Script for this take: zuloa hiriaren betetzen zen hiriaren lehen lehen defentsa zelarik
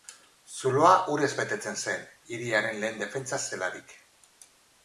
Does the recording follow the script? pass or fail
fail